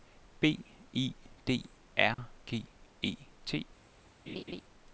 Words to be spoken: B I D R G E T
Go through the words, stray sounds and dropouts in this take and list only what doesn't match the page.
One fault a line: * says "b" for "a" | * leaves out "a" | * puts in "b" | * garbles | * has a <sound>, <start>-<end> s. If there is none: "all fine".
* has a dropout, 2.1-2.2 s
* has a laugh, 4.3-4.6 s